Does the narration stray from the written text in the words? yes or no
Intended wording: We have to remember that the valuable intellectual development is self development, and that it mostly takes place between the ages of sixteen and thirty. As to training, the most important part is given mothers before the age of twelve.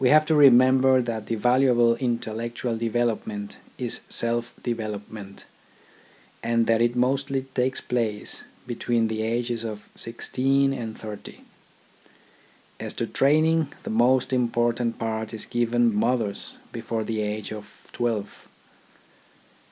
no